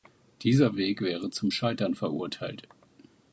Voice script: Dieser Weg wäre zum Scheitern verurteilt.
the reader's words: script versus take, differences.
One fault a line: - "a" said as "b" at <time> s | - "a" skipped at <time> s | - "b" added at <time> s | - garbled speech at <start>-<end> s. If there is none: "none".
none